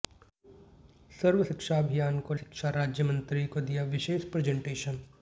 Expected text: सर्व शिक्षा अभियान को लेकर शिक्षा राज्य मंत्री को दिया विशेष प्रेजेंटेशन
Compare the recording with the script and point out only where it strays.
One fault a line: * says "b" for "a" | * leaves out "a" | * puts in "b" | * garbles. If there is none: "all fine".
* leaves out "लेकर"